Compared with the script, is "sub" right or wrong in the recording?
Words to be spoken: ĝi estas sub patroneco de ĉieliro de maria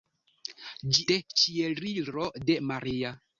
wrong